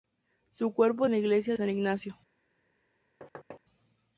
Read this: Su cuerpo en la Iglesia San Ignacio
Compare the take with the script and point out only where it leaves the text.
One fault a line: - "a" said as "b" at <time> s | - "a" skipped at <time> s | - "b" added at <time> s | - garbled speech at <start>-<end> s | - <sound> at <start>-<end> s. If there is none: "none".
- thud at 3.2-3.6 s